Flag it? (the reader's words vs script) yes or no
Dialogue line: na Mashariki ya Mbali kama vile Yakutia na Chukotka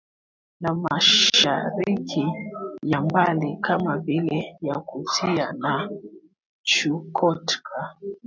no